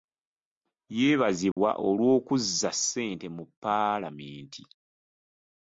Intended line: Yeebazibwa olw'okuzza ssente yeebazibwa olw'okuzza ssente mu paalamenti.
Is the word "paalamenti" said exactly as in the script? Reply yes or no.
yes